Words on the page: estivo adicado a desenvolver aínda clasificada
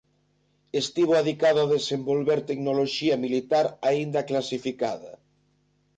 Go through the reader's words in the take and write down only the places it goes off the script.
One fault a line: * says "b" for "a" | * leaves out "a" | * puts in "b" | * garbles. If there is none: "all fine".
* puts in "tecnoloxía militar"